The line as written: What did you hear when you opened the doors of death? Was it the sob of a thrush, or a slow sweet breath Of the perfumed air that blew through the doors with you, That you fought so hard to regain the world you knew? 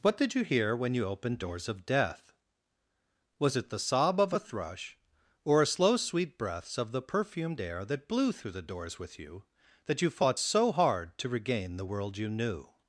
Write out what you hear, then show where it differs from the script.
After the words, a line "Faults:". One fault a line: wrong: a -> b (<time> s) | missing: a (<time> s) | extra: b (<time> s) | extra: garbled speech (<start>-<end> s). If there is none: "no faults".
What did you hear when you opened doors of death? Was it the sob of a thrush, or a slow sweet breaths Of the perfumed air that blew through the doors with you, That you fought so hard to regain the world you knew?
Faults:
missing: the (1.4 s)
wrong: breath -> breaths (6.4 s)